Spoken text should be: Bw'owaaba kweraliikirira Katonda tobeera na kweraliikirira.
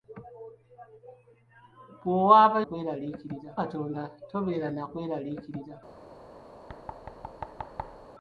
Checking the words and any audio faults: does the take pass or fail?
fail